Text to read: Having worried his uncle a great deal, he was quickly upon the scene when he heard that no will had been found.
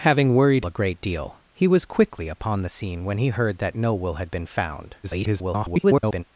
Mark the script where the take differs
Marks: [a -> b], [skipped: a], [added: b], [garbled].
Having worried [skipped: his uncle] a great deal, he was quickly upon the scene when he heard that no will had been found. [garbled]